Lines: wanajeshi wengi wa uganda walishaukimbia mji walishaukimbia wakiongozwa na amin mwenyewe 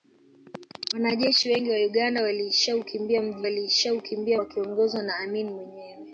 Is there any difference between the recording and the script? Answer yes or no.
no